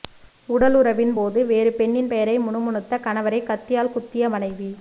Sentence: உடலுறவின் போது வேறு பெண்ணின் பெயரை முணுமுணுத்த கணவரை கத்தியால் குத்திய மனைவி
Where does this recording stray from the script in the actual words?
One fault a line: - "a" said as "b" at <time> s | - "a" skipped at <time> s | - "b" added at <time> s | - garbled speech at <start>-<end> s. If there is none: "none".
none